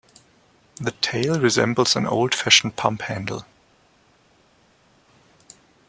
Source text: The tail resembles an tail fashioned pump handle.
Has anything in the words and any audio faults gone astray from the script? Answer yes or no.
yes